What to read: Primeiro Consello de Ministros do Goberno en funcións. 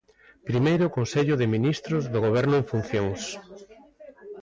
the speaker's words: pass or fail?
pass